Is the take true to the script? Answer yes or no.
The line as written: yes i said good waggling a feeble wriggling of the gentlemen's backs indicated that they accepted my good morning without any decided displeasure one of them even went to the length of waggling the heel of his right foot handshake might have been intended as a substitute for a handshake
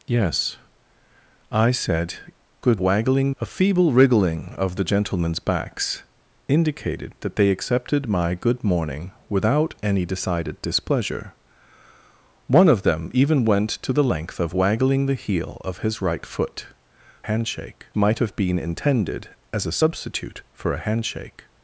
yes